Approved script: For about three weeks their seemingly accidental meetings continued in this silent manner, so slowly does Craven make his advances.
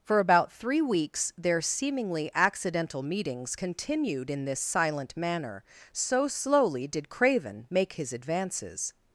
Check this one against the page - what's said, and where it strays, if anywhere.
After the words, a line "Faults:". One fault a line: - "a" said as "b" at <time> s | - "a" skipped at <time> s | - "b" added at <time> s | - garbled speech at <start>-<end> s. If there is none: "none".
For about three weeks their seemingly accidental meetings continued in this silent manner, so slowly did Craven make his advances.
Faults:
- "does" said as "did" at 6.9 s